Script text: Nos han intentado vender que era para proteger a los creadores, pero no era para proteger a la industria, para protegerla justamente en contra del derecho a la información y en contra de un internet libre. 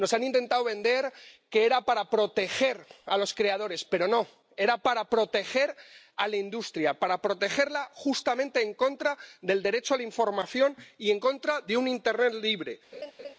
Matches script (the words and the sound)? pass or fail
fail